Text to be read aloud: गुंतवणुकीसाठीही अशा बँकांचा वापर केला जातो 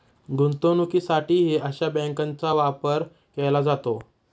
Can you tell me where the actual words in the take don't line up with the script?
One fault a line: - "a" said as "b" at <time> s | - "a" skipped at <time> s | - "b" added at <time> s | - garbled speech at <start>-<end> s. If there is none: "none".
none